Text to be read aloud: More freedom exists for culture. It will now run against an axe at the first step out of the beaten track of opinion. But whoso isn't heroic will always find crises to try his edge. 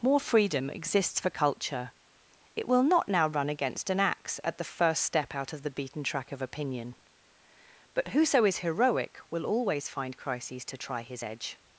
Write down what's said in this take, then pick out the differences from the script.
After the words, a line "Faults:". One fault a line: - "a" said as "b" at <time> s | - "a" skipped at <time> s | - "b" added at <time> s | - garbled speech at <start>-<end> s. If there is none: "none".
More freedom exists for culture. It will not now run against an axe at the first step out of the beaten track of opinion. But whoso is heroic will always find crises to try his edge.
Faults:
- "not" added at 2.8 s
- "isn't" said as "is" at 8.4 s